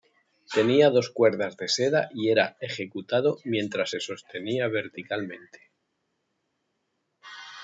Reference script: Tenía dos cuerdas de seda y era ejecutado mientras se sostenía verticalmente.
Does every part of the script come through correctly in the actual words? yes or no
yes